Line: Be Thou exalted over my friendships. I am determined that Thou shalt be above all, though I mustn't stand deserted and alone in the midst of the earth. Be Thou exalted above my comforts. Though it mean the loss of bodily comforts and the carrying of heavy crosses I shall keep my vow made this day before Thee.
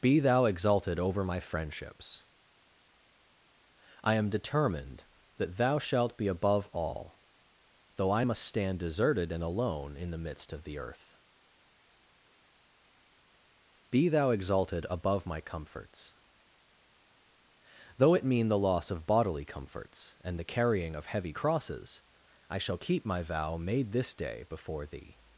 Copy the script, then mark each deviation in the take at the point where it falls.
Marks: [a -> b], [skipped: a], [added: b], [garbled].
Be Thou exalted over my friendships. I am determined that Thou shalt be above all, though I [mustn't -> must] stand deserted and alone in the midst of the earth. Be Thou exalted above my comforts. Though it mean the loss of bodily comforts and the carrying of heavy crosses I shall keep my vow made this day before Thee.